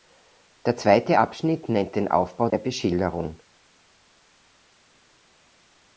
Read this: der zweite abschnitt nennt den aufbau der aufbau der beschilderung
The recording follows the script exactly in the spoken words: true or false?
false